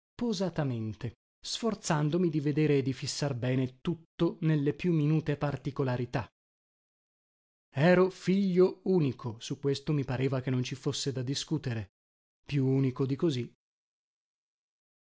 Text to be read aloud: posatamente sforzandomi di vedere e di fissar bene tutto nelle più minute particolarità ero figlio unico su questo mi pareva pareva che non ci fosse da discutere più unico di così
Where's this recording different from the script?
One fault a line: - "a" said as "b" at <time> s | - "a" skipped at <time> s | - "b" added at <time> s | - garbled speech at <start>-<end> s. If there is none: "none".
- "pareva" skipped at 10.4 s